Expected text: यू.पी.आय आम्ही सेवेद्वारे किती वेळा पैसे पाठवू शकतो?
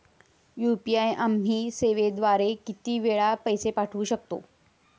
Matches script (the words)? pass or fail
pass